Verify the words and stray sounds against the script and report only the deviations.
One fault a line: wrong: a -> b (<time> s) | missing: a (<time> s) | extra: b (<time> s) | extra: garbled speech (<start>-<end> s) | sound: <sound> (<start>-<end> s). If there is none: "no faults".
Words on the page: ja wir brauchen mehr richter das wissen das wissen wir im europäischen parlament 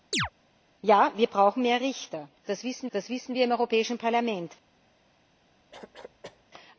sound: chirp (0.1-0.3 s)
sound: cough (5.7-6.4 s)